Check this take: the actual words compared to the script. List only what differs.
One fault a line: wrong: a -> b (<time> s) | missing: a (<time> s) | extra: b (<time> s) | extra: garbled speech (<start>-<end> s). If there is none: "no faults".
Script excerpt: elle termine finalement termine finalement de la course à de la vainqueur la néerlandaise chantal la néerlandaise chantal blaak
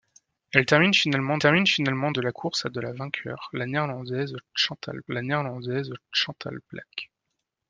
no faults